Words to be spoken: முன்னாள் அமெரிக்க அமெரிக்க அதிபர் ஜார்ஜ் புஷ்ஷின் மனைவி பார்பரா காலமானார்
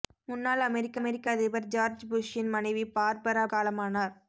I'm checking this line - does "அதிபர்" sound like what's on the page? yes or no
yes